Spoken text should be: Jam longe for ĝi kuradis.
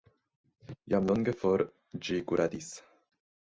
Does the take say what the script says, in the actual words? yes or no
yes